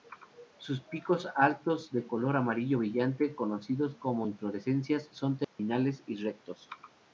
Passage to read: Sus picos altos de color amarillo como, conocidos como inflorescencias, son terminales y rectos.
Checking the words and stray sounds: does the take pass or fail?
fail